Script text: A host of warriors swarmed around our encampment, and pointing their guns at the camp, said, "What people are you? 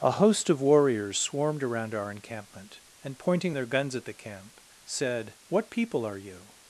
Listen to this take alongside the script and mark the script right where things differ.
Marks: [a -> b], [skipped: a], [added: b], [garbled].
A host of warriors swarmed around our encampment, and pointing their guns at the camp, said, "What people are you?